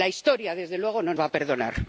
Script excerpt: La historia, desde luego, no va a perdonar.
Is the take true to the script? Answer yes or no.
yes